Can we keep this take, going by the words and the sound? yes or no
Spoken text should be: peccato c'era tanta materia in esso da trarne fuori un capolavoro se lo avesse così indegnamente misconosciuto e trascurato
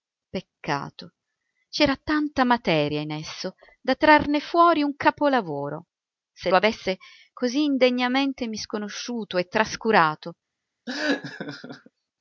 no